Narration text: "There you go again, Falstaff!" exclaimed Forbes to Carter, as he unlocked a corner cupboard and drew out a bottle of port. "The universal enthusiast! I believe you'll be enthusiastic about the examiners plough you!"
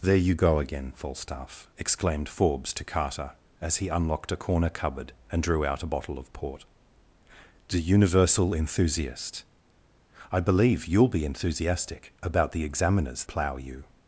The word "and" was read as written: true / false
true